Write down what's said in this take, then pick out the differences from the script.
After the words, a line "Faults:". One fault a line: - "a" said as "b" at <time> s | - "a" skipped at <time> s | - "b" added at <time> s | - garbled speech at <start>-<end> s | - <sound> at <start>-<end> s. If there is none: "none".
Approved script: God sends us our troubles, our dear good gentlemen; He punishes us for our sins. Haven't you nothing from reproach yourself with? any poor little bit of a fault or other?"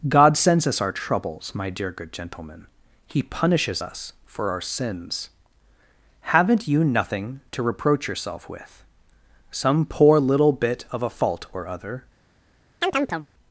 God sends us our troubles, my dear good gentlemen; He punishes us for our sins. Haven't you nothing to reproach yourself with? some poor little bit of a fault or other?"
Faults:
- "our" said as "my" at 1.5 s
- "from" said as "to" at 7.5 s
- "any" said as "some" at 9.5 s
- chirp at 12.8-13.3 s